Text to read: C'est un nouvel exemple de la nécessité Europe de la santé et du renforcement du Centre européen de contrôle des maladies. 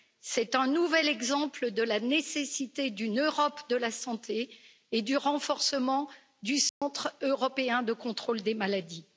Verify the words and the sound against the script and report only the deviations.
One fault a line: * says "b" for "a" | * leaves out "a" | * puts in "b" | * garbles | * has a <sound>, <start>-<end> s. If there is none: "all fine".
* puts in "d'une"
* has a dropout, 6.7-6.8 s